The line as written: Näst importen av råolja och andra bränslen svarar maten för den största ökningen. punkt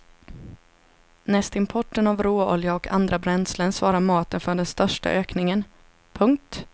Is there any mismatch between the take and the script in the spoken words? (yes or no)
no